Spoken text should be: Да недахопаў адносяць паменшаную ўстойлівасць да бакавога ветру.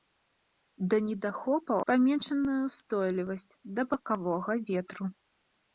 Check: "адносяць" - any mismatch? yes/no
yes